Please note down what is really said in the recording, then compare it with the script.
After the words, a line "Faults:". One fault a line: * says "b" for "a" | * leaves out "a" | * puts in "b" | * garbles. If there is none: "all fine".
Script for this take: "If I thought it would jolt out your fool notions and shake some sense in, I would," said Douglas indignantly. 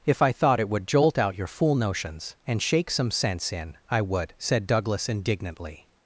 "If I thought it would jolt out your fool notions and shake some sense in, I would," said Douglas indignantly.
Faults:
all fine